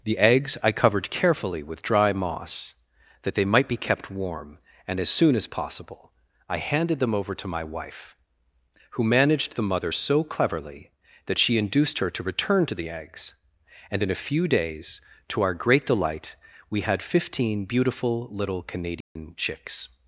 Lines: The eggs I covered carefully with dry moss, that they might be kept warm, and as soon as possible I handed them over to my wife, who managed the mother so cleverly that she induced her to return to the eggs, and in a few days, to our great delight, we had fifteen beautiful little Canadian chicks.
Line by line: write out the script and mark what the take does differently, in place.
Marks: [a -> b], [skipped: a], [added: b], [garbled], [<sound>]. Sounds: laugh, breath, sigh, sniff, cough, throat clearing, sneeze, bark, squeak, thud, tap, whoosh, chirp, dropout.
The eggs I covered carefully with dry moss, that they might be kept warm, and as soon as possible I handed them over to my wife, who managed the mother so cleverly that she induced her to return to the eggs, and in a few days, to our great delight, we had fifteen beautiful little Canadian [dropout] chicks.